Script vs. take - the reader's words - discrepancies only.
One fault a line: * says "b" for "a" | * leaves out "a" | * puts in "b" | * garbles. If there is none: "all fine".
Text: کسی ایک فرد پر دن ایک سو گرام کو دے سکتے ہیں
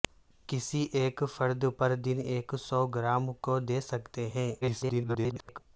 * garbles